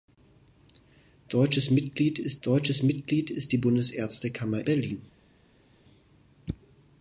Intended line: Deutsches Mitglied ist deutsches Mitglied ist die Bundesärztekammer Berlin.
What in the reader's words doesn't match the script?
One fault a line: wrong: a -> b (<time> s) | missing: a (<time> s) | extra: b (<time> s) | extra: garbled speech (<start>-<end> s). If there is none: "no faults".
no faults